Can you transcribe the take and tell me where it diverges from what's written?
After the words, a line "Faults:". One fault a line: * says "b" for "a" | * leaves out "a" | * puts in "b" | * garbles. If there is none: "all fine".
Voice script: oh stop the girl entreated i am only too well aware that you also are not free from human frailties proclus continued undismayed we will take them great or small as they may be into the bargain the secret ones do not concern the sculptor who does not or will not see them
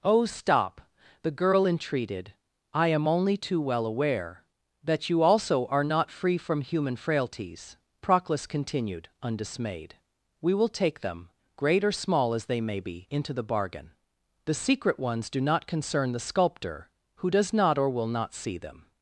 oh stop the girl entreated i am only too well aware that you also are not free from human frailties proclus continued undismayed we will take them great or small as they may be into the bargain the secret ones do not concern the sculptor who does not or will not see them
Faults:
all fine